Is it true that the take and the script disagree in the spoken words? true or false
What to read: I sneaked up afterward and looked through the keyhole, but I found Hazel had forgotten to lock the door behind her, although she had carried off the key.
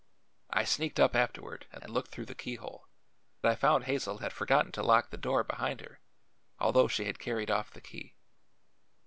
true